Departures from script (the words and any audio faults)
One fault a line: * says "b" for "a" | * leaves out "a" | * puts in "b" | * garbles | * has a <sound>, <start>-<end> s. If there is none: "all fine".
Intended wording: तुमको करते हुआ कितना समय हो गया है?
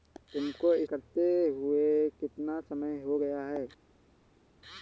all fine